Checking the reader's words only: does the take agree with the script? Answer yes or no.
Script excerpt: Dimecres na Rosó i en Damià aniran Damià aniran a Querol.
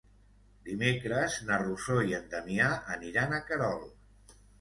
no